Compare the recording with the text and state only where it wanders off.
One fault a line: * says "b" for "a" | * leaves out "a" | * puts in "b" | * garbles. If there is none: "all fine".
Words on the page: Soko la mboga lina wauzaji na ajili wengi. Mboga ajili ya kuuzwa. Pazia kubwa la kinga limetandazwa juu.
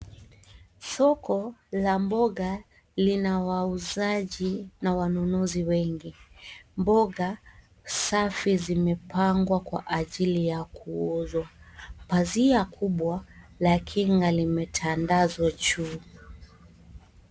* says "wanunuzi" for "ajili"
* puts in "safi zimepangwa kwa"